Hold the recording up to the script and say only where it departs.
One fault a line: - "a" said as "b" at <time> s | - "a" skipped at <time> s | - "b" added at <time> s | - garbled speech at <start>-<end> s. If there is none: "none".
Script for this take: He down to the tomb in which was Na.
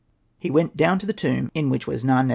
- "went" added at 0.5 s